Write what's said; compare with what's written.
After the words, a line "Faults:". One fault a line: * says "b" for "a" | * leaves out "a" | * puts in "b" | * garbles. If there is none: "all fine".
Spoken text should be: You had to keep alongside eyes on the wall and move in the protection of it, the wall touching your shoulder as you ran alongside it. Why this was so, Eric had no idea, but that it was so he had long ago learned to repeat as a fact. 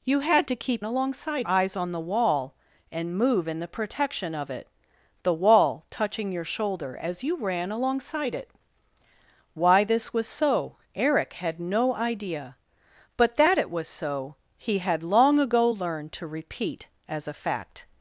You had to keep alongside eyes on the wall and move in the protection of it, the wall touching your shoulder as you ran alongside it. Why this was so, Eric had no idea, but that it was so he had long ago learned to repeat as a fact.
Faults:
all fine